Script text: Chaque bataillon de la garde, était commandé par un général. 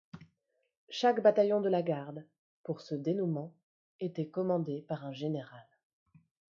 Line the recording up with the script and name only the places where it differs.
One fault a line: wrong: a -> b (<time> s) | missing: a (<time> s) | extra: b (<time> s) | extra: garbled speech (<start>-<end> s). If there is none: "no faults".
extra: pour ce dénouement (2.6 s)